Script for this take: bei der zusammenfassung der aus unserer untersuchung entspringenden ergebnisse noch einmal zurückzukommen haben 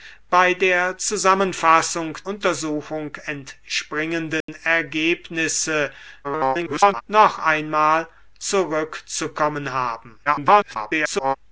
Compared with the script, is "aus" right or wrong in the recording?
wrong